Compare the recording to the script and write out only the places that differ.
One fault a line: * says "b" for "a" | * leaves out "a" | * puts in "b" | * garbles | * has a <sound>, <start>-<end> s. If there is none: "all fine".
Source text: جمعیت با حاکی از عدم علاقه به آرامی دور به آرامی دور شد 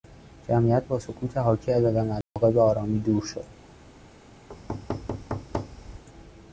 * puts in "سکوت"
* has a dropout, 2.2-2.4 s
* leaves out "به آرامی دور"
* has a thud, 4.5-6.0 s